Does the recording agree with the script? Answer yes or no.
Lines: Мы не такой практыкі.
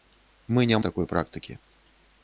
yes